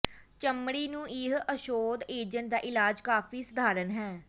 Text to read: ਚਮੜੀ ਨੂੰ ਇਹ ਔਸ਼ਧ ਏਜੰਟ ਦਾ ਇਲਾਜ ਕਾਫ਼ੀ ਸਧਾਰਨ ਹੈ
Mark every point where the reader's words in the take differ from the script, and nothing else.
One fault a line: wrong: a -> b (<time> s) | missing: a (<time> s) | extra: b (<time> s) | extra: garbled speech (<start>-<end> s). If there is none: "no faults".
no faults